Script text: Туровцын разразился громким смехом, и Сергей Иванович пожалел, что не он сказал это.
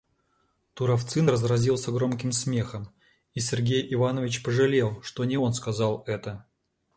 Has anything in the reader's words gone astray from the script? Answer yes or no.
no